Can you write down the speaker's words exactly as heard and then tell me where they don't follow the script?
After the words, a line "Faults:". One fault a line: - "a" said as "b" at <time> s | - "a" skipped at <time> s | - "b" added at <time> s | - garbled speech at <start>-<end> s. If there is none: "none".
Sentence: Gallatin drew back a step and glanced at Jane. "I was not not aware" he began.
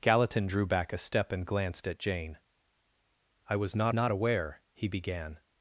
Gallatin drew back a step and glanced at Jane. "I was not not aware" he began.
Faults:
none